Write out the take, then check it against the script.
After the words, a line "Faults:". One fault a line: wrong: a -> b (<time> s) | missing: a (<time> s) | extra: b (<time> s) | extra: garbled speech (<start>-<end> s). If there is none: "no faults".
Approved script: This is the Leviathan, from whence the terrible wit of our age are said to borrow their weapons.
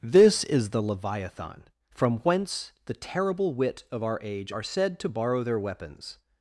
This is the Leviathan, from whence the terrible wit of our age are said to borrow their weapons.
Faults:
no faults